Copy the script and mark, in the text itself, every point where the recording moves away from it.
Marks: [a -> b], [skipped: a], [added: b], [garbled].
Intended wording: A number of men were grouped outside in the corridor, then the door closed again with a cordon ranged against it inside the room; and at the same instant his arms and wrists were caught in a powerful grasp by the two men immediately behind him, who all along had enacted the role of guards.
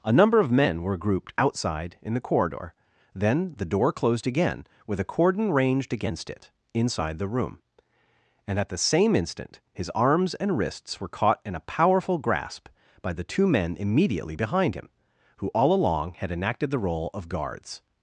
A number of men were grouped outside in the corridor, then the door closed again with a cordon ranged against it inside the room; and at the same instant his arms and wrists were caught in a powerful grasp by the two men immediately behind him, who all along had enacted the role of guards.